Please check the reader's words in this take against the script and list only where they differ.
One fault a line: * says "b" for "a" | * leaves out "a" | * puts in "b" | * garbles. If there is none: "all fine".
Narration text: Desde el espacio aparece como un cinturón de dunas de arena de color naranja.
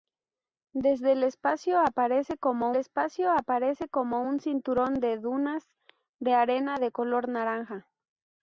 * puts in "espacio aparece como"